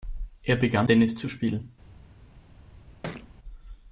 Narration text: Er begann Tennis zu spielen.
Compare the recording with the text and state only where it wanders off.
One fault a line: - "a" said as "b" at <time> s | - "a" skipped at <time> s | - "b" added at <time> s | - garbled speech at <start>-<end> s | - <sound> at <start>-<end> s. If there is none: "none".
- thud at 3.0-3.3 s